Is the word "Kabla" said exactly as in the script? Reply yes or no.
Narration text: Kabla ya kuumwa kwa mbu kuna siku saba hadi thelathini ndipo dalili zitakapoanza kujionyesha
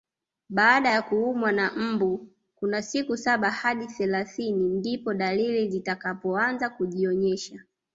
no